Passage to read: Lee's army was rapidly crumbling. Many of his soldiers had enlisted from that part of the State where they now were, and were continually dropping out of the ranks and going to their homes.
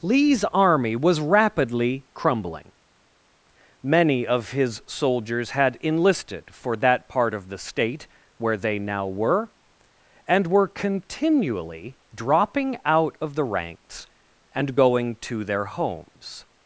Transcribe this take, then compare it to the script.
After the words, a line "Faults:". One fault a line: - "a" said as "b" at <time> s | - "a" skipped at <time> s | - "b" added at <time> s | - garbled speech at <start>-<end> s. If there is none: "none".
Lee's army was rapidly crumbling. Many of his soldiers had enlisted for that part of the State where they now were, and were continually dropping out of the ranks and going to their homes.
Faults:
- "from" said as "for" at 6.5 s